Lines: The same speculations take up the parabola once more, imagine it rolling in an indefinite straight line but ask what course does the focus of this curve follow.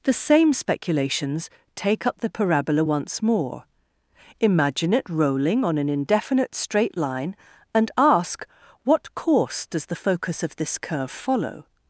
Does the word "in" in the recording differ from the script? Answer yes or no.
yes